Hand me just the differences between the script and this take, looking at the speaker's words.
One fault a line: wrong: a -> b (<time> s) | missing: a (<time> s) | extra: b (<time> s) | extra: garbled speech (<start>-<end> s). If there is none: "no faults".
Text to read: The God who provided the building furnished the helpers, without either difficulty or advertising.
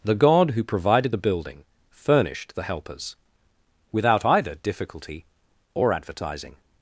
no faults